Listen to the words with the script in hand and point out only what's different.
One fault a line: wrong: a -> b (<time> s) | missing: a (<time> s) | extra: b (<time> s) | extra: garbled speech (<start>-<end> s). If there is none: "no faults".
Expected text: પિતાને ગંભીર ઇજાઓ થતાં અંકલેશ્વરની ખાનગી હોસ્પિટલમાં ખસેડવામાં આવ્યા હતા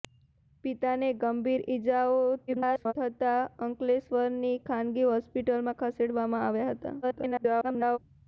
extra: garbled speech (2.5-2.9 s)
extra: garbled speech (7.0-8.0 s)